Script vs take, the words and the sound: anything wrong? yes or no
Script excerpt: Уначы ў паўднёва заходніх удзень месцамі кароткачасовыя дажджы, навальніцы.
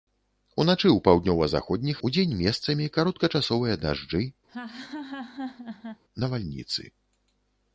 yes